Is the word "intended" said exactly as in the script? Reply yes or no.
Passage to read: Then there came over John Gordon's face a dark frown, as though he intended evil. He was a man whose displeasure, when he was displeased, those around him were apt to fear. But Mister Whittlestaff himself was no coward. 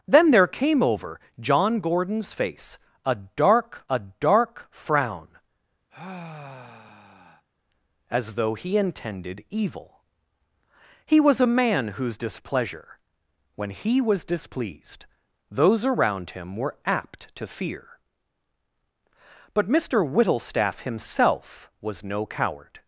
yes